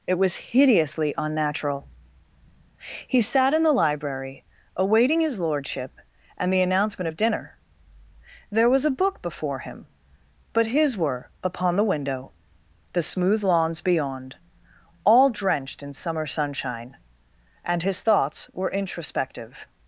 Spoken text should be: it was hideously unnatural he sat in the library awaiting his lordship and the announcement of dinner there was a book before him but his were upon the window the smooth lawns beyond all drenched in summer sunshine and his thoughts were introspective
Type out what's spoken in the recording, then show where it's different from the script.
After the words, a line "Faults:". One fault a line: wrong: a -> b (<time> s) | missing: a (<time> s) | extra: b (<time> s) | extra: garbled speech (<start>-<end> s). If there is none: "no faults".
it was hideously unnatural he sat in the library awaiting his lordship and the announcement of dinner there was a book before him but his were upon the window the smooth lawns beyond all drenched in summer sunshine and his thoughts were introspective
Faults:
no faults